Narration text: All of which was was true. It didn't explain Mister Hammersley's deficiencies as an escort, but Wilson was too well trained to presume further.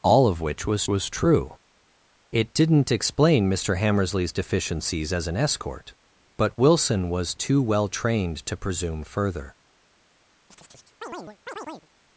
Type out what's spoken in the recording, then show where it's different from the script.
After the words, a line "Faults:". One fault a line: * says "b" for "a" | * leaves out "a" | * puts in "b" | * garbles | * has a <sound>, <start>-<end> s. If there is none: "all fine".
All of which was was true. It didn't explain Mister Hammersley's deficiencies as an escort, but Wilson was too well trained to presume further.
Faults:
* has a chirp, 10.5-11.9 s